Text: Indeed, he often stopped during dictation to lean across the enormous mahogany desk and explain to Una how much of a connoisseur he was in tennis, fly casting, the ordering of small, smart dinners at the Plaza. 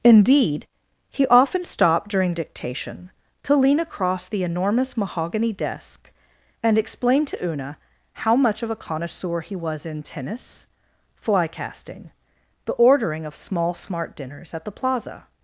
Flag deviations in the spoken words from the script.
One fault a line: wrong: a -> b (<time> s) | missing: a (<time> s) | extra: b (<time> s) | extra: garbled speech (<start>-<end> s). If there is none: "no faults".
no faults